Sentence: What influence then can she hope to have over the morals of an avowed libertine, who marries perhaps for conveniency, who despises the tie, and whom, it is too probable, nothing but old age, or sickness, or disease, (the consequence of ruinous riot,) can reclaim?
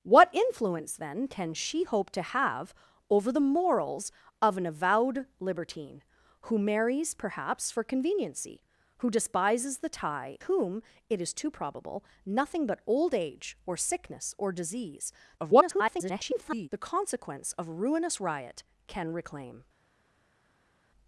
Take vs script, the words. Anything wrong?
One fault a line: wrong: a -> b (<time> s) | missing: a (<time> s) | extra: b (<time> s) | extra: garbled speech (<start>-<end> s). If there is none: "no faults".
missing: and (10.4 s)
extra: garbled speech (15.4-16.7 s)